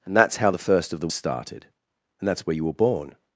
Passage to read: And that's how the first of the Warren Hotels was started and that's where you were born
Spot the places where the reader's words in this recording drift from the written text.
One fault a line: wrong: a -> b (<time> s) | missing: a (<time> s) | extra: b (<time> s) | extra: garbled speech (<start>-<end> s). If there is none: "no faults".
missing: Warren Hotels was (1.1 s)